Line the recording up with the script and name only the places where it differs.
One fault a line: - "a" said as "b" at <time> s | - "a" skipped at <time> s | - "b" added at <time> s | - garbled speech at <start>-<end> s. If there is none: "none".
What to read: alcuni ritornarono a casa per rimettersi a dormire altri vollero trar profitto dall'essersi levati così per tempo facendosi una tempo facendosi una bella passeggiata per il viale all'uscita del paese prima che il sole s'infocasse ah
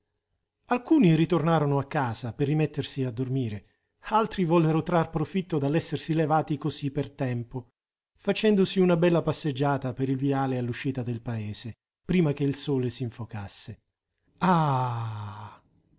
- "tempo facendosi una" skipped at 9.0 s